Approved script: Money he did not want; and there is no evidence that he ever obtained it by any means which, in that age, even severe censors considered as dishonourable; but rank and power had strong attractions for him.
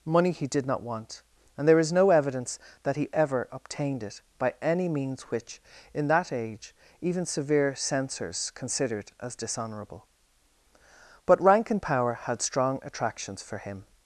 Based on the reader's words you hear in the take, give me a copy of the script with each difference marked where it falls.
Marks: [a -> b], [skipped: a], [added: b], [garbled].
Money he did not want; and there is no evidence that he ever obtained it by any means which, in that age, even severe censors considered as dishonourable; but rank and power had strong attractions for him.